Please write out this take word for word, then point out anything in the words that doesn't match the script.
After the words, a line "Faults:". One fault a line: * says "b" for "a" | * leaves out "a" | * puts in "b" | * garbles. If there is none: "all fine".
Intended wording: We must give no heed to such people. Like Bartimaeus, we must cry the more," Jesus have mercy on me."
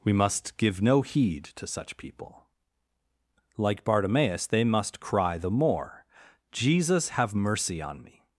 We must give no heed to such people. Like Bartimaeus, they must cry the more," Jesus have mercy on me."
Faults:
* says "they" for "we"